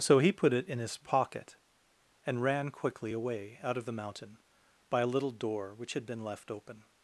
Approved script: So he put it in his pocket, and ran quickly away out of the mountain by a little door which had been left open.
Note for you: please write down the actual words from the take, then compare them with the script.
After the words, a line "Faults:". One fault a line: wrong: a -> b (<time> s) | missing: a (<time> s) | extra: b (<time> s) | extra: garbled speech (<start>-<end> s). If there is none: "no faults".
So he put it in his pocket, and ran quickly away out of the mountain by a little door which had been left open.
Faults:
no faults